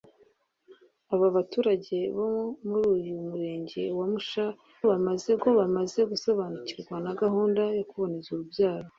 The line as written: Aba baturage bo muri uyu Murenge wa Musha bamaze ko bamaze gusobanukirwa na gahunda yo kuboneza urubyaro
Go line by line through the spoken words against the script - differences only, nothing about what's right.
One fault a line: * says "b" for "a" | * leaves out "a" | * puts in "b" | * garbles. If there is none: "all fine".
all fine